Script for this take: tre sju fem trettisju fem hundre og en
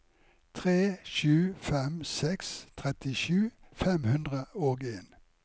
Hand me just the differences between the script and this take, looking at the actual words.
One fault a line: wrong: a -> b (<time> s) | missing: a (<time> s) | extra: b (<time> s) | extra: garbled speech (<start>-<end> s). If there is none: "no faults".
extra: seks (2.0 s)